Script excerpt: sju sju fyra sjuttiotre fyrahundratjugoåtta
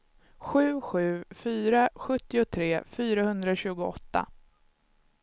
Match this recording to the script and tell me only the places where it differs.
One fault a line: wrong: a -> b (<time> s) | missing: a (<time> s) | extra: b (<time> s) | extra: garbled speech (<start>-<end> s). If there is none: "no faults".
no faults